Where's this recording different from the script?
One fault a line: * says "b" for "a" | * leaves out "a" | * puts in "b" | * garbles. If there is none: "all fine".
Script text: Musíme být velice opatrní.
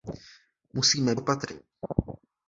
* leaves out "být velice"